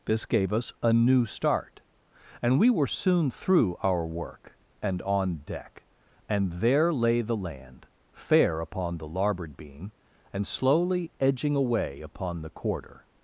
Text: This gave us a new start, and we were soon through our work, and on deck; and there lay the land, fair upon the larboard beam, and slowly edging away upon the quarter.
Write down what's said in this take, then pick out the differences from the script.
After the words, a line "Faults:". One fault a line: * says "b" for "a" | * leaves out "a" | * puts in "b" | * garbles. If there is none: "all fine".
This gave us a new start, and we were soon through our work, and on deck; and there lay the land, fair upon the larboard beam, and slowly edging away upon the quarter.
Faults:
all fine